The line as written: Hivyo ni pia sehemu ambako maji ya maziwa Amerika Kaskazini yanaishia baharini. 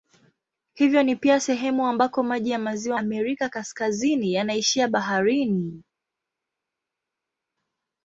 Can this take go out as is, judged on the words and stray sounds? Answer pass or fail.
pass